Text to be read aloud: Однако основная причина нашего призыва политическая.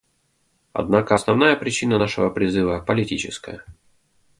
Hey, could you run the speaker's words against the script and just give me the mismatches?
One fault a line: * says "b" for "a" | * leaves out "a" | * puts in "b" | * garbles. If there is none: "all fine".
all fine